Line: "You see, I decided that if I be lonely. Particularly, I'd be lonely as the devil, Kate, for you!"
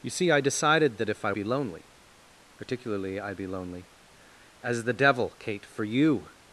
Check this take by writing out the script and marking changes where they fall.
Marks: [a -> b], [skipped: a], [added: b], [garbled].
"You see, I decided that if I be lonely. Particularly, I'd be lonely as the devil, Kate, for you!"